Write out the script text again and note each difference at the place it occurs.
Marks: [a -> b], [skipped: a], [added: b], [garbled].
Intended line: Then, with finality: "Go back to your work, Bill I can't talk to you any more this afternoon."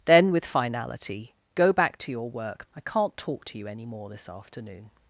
Then, with finality: "Go back to your work, [skipped: Bill] I can't talk to you any more this afternoon."